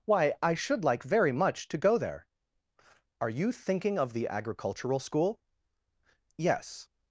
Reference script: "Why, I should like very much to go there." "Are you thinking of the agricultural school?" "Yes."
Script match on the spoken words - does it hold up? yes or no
yes